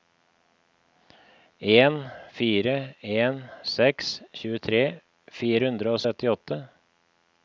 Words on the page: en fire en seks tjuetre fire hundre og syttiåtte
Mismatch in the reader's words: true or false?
false